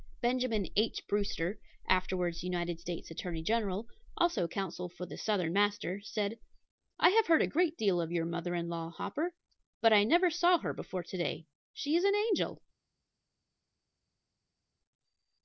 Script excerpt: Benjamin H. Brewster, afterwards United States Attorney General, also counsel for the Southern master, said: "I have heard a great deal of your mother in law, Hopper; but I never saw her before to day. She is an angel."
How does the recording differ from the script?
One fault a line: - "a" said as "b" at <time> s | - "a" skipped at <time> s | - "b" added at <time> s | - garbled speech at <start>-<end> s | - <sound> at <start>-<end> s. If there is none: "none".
none